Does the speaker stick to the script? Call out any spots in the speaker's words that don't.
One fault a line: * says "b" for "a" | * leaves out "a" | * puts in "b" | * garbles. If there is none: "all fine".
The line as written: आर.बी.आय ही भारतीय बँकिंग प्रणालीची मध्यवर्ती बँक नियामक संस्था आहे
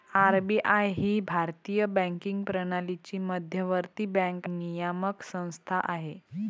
all fine